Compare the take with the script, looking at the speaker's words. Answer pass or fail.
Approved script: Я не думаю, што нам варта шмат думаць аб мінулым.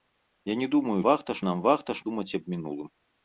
fail